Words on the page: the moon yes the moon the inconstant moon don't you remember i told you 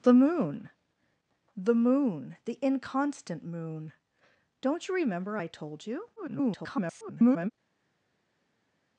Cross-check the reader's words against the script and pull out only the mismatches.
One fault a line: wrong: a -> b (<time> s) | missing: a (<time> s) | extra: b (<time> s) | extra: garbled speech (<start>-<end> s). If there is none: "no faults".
missing: yes (0.7 s)
extra: garbled speech (6.2-7.5 s)